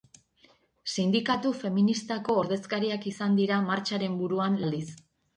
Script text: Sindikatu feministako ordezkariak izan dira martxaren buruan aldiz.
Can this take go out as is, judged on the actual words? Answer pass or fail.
pass